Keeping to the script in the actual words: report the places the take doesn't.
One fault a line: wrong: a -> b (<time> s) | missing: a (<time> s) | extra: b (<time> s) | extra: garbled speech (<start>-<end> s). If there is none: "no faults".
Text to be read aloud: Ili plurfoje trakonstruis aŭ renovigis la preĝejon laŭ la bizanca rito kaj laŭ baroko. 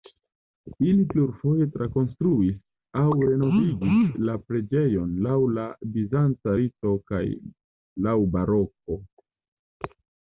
no faults